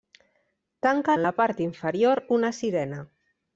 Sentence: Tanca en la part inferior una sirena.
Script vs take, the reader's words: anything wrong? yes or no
no